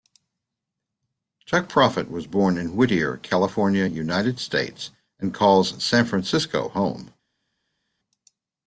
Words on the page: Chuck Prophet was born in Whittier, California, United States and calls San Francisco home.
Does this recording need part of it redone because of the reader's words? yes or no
no